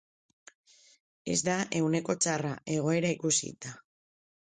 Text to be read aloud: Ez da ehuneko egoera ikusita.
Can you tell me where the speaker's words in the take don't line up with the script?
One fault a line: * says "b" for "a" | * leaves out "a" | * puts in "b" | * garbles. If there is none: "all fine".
* puts in "txarra"